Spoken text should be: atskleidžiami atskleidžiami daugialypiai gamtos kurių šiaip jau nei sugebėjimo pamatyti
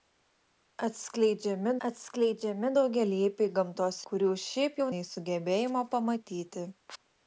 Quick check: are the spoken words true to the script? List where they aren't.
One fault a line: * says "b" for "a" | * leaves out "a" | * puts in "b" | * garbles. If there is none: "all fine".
all fine